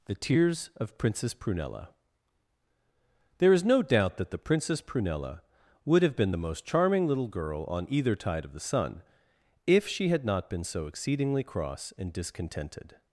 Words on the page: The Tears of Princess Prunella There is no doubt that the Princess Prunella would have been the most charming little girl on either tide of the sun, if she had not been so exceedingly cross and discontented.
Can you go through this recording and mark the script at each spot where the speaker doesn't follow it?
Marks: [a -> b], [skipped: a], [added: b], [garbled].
The Tears of Princess Prunella There is no doubt that the Princess Prunella would have been the most charming little girl on either tide of the sun, if she had not been so exceedingly cross and discontented.